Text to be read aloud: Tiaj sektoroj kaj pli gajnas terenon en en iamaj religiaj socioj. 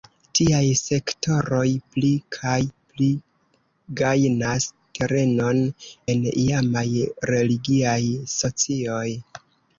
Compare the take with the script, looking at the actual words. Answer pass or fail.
fail